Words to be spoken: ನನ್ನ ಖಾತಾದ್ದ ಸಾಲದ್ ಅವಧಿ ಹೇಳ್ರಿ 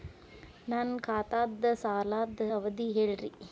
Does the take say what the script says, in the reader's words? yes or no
yes